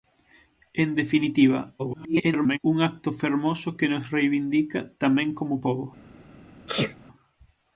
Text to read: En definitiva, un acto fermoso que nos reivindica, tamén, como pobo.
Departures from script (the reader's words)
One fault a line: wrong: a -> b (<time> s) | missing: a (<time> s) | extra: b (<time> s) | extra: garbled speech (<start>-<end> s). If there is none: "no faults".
extra: garbled speech (1.8-2.6 s)